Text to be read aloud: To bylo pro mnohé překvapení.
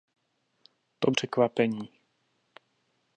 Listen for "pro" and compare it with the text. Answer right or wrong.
wrong